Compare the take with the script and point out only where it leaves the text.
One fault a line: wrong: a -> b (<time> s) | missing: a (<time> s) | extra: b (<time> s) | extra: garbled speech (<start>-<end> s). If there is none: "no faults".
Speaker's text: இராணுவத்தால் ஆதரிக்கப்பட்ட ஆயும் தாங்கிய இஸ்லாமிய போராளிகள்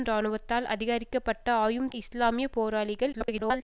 missing: தாங்கிய (1.9 s)
extra: garbled speech (3.1-3.6 s)